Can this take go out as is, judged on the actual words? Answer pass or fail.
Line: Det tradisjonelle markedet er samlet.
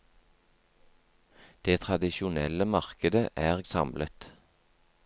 pass